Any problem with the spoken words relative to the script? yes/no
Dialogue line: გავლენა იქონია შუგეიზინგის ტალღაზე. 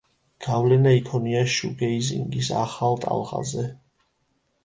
yes